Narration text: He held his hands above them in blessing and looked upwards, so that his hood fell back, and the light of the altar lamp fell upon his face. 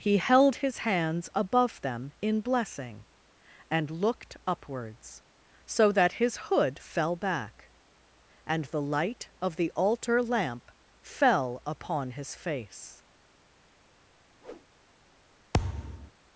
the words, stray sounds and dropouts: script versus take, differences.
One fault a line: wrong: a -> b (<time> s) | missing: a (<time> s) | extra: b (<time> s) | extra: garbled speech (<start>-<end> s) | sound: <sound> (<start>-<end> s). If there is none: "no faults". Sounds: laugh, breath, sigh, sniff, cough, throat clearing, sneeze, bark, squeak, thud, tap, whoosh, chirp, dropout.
sound: whoosh (14.4-14.7 s)
sound: thud (15.5-16.1 s)